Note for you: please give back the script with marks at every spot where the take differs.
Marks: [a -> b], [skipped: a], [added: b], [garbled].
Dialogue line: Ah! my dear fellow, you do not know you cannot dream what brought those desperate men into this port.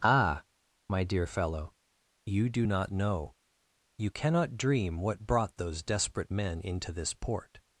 Ah! my dear fellow, you do not know you cannot dream what brought those desperate men into this port.